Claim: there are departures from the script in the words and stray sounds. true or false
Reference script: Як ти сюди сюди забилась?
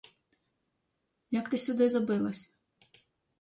true